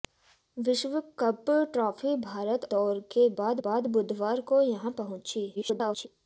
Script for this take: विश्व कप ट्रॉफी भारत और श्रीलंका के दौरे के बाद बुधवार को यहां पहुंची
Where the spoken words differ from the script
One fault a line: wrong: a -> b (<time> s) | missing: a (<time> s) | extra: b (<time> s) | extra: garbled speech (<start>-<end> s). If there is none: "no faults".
wrong: और श्रीलंका -> दौरे (2.7 s)
wrong: दौरे के -> बाद (3.3 s)
extra: garbled speech (5.5-6.1 s)